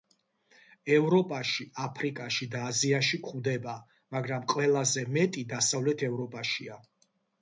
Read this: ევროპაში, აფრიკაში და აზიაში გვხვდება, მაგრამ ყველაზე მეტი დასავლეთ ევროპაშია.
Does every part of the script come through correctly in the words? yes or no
yes